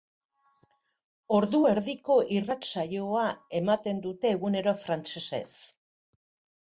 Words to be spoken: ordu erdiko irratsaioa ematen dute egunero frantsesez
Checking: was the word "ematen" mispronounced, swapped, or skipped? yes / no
no